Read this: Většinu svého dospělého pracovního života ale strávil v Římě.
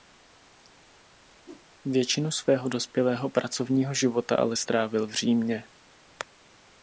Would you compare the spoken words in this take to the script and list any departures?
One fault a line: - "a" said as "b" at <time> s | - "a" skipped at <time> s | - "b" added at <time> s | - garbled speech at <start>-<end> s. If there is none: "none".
none